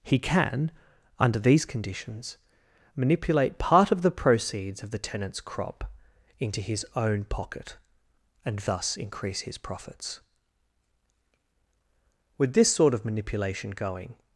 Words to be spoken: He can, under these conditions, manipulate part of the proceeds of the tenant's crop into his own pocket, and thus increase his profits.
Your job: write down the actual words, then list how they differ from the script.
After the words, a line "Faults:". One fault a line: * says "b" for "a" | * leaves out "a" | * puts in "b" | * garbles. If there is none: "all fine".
He can, under these conditions, manipulate part of the proceeds of the tenant's crop into his own pocket, and thus increase his profits. With this sort of manipulation going
Faults:
* puts in "With this sort of manipulation going"